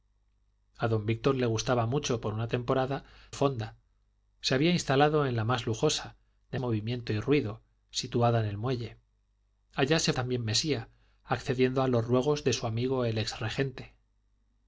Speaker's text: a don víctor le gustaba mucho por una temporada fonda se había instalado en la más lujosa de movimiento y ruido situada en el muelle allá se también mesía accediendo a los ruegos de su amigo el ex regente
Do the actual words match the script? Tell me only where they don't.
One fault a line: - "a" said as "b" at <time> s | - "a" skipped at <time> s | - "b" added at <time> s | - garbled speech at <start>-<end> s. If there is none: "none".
none